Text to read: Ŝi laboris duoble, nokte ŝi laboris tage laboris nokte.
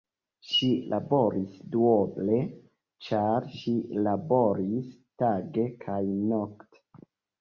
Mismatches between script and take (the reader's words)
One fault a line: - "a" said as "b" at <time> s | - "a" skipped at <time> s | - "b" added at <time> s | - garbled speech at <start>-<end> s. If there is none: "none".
- "nokte" said as "ĉar" at 3.1 s
- "laboris" said as "kaj" at 5.8 s